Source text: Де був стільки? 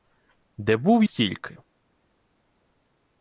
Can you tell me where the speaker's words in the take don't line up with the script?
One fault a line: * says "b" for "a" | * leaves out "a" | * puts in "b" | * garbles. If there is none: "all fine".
all fine